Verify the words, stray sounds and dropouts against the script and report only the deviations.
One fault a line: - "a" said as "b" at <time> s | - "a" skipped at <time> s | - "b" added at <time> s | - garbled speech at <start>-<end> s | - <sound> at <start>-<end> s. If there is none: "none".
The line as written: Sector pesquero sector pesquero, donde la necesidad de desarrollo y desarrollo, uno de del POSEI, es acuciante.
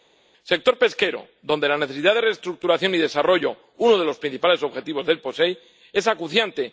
- "sector pesquero" skipped at 1.3 s
- "desarrollo" said as "reestructuración" at 2.2 s
- "los principales objetivos" added at 4.0 s